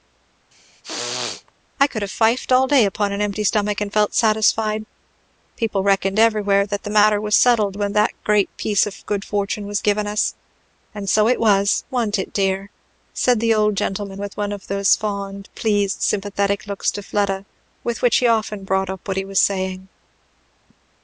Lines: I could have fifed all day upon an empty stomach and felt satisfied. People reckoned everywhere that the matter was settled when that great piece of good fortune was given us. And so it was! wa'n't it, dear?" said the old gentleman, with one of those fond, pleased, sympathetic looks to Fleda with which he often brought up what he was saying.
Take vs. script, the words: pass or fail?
pass